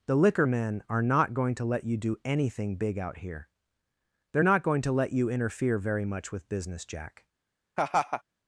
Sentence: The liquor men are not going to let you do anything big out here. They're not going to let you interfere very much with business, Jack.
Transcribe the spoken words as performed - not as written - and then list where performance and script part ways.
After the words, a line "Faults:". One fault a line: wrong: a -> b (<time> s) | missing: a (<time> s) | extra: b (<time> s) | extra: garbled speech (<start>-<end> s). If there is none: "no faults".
The liquor men are not going to let you do anything big out here. They're not going to let you interfere very much with business, Jack.
Faults:
no faults